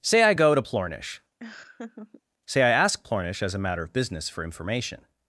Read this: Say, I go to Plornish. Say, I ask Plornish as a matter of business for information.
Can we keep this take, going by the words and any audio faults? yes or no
no